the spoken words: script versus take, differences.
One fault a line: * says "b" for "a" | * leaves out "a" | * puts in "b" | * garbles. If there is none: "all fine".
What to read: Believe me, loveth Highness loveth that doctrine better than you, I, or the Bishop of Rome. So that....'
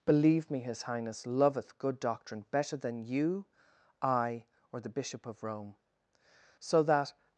* says "his" for "loveth"
* says "good" for "that"